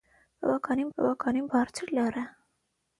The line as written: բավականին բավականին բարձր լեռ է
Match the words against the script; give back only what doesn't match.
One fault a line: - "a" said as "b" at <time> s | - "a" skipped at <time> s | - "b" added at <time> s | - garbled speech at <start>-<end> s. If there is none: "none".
none